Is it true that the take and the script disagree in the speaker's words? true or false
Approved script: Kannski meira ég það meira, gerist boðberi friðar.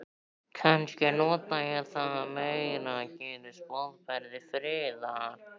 true